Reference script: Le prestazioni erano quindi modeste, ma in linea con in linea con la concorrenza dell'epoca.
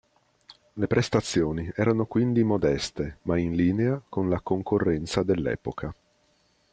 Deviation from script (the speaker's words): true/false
true